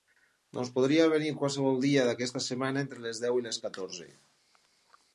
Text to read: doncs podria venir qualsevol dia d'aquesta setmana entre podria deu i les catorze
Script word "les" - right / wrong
right